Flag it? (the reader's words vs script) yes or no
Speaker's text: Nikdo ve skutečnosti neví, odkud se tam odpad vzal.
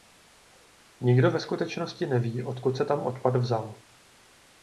no